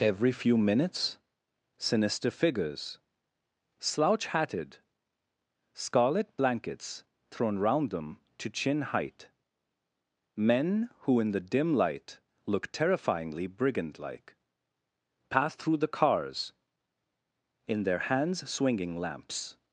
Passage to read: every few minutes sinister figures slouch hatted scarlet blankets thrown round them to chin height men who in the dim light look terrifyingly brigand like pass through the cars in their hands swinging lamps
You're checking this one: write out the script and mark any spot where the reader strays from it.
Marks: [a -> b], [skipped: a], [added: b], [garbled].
every few minutes sinister figures slouch hatted scarlet blankets thrown round them to chin height men who in the dim light look terrifyingly brigand like pass through the cars in their hands swinging lamps